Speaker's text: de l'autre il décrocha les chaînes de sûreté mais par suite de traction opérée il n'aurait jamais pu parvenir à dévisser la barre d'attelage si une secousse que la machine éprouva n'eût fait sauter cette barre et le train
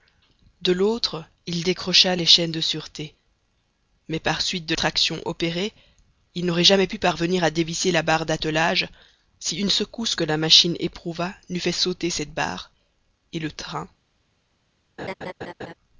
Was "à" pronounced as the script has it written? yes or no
yes